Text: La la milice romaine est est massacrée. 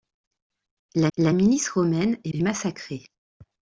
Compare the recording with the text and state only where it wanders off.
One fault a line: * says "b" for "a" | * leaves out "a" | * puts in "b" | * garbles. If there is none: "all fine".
all fine